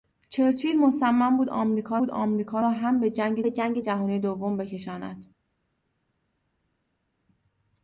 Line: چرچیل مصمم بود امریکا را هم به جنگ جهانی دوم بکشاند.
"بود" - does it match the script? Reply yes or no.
yes